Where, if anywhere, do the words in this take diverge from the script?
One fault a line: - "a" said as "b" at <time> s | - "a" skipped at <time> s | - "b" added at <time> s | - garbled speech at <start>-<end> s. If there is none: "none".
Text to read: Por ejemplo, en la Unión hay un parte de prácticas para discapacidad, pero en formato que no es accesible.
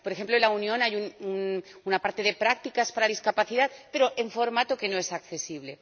- "un" said as "una" at 1.8 s